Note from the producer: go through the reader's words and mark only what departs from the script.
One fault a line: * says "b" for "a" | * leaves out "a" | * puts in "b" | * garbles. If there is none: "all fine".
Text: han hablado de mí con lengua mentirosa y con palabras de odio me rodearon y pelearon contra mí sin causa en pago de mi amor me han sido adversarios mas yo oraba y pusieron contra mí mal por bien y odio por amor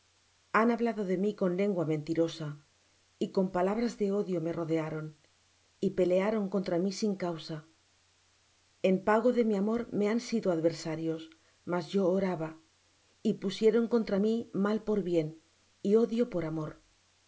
all fine